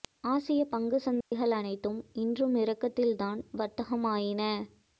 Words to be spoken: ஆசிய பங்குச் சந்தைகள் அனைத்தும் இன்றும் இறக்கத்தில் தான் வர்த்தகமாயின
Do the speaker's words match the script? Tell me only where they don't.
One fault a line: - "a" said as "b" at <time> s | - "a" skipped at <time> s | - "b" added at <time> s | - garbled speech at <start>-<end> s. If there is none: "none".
none